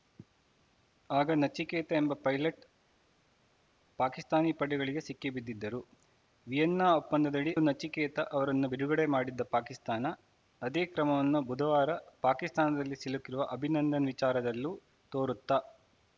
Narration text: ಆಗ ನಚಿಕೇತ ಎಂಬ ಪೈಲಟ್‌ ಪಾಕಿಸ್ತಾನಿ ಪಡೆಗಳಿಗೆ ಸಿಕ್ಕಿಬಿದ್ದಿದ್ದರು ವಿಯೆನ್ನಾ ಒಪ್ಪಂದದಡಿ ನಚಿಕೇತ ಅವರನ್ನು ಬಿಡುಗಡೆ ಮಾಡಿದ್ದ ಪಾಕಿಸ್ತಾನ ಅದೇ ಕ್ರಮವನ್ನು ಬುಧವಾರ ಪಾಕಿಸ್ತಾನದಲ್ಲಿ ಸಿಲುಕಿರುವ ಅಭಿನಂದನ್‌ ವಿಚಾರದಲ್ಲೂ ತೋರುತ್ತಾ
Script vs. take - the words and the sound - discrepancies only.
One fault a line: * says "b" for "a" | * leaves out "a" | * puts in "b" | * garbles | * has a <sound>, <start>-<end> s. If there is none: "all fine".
all fine